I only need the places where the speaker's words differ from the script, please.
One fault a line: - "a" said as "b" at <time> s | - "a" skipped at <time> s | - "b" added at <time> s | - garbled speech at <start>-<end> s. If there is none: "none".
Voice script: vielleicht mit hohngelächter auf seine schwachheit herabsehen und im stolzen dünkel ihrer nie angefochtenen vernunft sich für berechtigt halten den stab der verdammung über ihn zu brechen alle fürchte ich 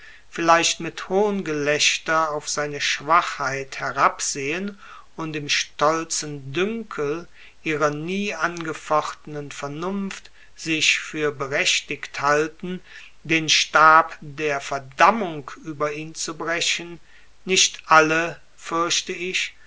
- "nicht" added at 17.4 s